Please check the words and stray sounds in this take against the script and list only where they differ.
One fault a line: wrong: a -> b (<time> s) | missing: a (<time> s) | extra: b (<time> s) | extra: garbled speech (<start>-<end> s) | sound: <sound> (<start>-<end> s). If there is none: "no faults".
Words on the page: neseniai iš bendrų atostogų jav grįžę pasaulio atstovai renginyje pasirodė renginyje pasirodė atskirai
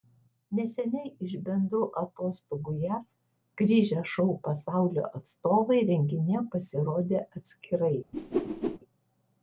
extra: šou (4.1 s)
missing: renginyje pasirodė (7.3 s)
sound: whoosh (8.1-8.8 s)